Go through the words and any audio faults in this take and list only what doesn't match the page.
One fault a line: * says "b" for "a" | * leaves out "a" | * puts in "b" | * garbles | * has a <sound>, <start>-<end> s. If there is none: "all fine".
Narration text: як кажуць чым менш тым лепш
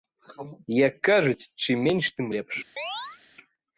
* has a chirp, 2.8-3.2 s